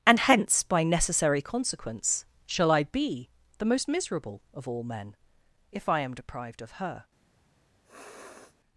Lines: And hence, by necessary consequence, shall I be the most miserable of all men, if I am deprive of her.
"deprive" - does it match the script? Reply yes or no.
no